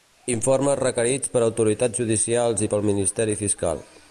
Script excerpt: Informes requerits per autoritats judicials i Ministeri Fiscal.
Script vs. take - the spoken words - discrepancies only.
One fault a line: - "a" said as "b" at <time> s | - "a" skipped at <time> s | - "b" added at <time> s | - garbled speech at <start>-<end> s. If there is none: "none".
- "pel" added at 2.7 s